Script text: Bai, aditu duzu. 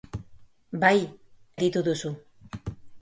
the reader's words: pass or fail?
pass